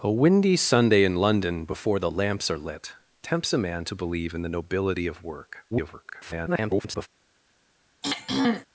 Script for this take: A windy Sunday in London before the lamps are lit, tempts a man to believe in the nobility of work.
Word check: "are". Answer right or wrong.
right